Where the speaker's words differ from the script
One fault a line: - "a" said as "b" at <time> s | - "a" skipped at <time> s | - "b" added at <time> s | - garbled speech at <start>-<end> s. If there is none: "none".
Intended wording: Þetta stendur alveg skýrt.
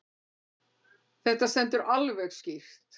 none